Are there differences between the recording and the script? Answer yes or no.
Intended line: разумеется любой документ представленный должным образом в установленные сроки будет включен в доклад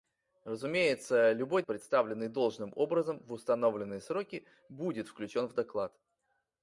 yes